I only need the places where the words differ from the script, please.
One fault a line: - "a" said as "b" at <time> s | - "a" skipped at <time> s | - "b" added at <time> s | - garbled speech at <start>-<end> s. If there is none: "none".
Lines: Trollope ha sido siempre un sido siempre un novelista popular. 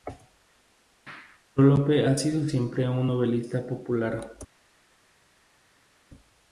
- "sido siempre un" skipped at 3.1 s